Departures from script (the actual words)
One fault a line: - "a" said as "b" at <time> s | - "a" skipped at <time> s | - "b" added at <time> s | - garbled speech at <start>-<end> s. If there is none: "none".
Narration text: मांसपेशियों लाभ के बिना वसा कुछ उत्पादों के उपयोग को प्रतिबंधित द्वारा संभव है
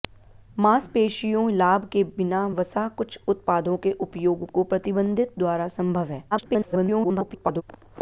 - garbled speech at 6.3-7.6 s